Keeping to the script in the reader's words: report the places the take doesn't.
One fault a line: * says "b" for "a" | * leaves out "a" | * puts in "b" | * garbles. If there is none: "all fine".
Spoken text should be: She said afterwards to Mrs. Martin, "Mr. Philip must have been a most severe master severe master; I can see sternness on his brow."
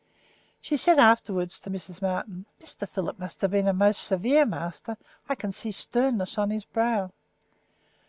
* leaves out "severe master"